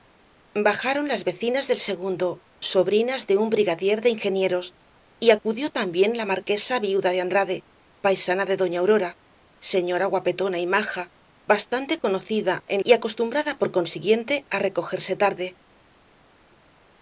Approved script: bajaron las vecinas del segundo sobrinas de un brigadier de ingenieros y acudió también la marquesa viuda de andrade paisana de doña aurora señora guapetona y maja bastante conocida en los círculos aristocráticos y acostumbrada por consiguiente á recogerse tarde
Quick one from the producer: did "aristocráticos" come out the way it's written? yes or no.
no